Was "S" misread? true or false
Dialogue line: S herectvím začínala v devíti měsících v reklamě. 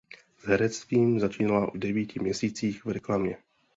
false